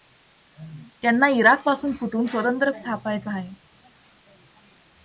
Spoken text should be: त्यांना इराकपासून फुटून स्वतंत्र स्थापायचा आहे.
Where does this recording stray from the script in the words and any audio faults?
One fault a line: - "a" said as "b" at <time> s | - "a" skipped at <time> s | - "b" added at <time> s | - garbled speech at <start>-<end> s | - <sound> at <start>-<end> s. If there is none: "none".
none